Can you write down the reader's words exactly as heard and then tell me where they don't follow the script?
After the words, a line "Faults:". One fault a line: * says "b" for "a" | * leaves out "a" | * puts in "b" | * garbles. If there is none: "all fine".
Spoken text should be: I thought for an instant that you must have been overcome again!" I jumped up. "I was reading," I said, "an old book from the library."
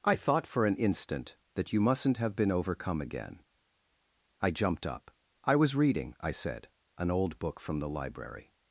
I thought for an instant that you mustn't have been overcome again!" I jumped up. "I was reading," I said, "an old book from the library."
Faults:
* says "mustn't" for "must"